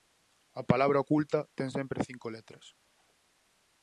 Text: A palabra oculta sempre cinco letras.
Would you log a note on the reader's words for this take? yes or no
yes